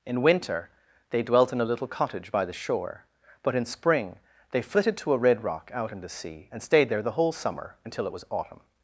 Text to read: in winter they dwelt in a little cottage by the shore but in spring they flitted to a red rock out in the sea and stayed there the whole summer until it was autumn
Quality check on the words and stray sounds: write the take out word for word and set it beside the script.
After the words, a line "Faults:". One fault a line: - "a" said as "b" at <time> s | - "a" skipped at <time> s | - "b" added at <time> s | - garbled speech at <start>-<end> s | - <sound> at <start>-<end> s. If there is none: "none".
in winter they dwelt in a little cottage by the shore but in spring they flitted to a red rock out in the sea and stayed there the whole summer until it was autumn
Faults:
none